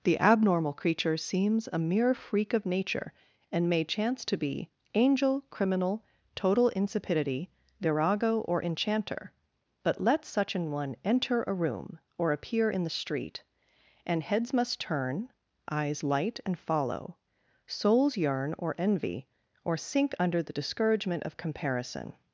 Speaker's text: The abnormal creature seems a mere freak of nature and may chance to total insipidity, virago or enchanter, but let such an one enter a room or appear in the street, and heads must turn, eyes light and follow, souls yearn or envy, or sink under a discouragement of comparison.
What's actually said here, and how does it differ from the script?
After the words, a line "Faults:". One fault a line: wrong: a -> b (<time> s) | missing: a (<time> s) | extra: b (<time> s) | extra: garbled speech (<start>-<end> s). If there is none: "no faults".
The abnormal creature seems a mere freak of nature and may chance to be angel, criminal, total insipidity, virago or enchanter, but let such an one enter a room or appear in the street, and heads must turn, eyes light and follow, souls yearn or envy, or sink under the discouragement of comparison.
Faults:
extra: be angel criminal (4.4 s)
wrong: a -> the (20.4 s)